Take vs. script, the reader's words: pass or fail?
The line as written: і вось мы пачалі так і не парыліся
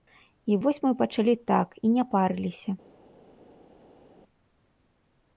pass